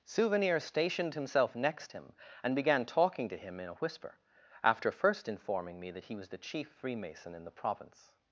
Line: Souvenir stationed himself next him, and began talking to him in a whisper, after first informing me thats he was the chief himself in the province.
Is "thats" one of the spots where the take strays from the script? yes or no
yes